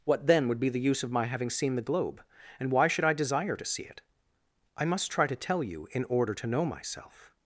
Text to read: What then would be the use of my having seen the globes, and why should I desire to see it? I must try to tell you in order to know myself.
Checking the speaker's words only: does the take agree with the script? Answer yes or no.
no